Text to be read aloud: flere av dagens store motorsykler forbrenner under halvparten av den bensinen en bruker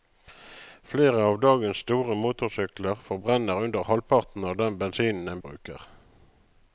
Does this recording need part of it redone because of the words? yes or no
no